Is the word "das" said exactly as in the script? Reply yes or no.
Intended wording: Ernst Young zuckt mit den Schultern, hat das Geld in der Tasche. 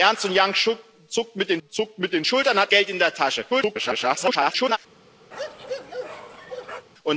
no